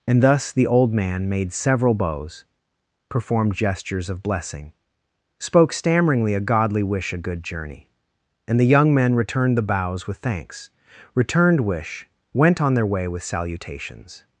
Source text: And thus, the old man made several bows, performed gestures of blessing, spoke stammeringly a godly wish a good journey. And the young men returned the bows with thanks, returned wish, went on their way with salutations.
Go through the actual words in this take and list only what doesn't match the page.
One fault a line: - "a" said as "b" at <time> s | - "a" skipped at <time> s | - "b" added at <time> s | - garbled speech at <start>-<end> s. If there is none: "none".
none